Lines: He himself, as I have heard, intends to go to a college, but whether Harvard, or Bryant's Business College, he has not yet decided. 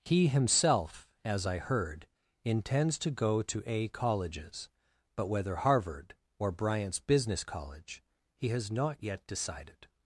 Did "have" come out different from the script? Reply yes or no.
yes